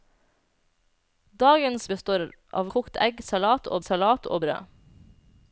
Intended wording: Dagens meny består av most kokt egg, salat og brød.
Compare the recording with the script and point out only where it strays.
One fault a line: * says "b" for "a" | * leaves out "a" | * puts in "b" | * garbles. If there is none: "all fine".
* leaves out "meny"
* leaves out "most"
* puts in "salat og"